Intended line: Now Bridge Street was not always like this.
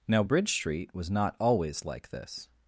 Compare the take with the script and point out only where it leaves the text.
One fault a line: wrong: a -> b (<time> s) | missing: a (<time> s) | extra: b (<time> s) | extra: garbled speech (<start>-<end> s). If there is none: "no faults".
no faults